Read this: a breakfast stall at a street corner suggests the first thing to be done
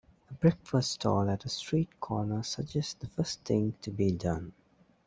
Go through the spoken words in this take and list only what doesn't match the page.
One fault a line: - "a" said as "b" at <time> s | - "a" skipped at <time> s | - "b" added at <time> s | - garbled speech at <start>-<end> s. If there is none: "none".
none